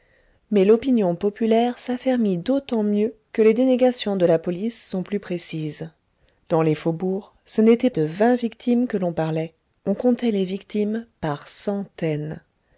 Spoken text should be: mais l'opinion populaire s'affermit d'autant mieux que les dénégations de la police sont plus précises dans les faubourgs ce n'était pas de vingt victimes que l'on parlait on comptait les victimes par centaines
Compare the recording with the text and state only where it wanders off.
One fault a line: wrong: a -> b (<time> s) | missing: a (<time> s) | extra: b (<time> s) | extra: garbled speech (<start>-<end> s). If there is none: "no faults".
missing: pas (7.9 s)